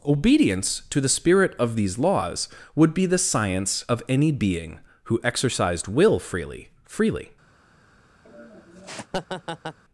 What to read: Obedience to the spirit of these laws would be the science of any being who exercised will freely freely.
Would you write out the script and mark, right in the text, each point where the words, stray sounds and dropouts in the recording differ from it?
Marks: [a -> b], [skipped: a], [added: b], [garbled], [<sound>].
Obedience to the spirit of these laws would be the science of any being who exercised will freely freely. [laugh]